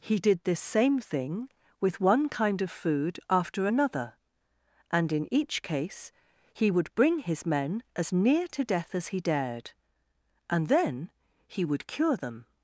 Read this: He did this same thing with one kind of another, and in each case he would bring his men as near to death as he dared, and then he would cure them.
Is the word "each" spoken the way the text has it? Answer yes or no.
yes